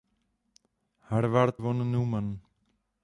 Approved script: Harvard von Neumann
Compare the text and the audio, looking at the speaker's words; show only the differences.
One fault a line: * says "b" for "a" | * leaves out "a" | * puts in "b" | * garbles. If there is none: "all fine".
all fine